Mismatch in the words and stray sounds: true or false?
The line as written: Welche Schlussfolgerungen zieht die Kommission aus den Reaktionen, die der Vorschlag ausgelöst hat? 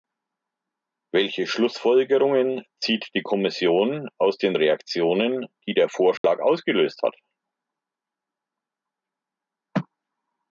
true